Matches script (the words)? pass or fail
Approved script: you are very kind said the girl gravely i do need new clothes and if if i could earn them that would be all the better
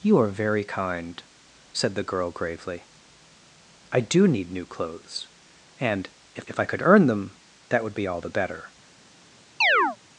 pass